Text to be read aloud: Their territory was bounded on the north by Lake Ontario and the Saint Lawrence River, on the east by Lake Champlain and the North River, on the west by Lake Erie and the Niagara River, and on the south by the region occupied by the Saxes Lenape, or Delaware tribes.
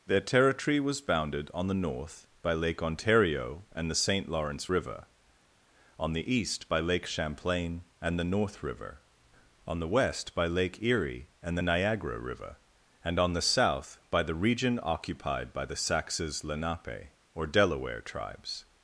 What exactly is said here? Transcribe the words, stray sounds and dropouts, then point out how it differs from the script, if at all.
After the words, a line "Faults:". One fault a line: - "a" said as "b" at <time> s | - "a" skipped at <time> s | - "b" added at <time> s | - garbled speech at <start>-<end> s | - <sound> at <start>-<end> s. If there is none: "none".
Their territory was bounded on the north by Lake Ontario and the Saint Lawrence River, on the east by Lake Champlain and the North River, on the west by Lake Erie and the Niagara River, and on the south by the region occupied by the Saxes Lenape, or Delaware tribes.
Faults:
none